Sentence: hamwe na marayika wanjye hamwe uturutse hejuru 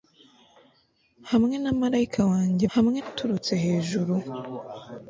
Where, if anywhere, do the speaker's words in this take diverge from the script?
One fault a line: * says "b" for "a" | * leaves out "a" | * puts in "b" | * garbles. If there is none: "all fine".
all fine